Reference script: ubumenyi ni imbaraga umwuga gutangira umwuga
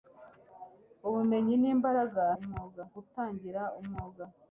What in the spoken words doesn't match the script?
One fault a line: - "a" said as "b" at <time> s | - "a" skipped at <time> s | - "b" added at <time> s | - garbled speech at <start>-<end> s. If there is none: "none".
none